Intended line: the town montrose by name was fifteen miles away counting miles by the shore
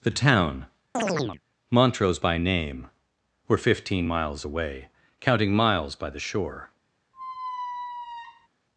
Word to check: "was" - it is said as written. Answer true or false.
false